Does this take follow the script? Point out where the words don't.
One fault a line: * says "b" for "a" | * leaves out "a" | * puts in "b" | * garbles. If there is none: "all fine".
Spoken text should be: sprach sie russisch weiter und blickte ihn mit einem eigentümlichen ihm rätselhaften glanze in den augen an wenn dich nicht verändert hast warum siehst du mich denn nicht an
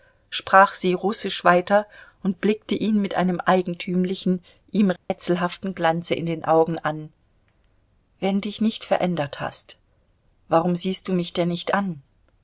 all fine